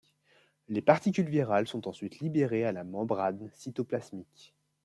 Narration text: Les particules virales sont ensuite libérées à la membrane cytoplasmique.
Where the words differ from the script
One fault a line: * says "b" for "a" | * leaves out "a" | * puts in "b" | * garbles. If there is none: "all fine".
all fine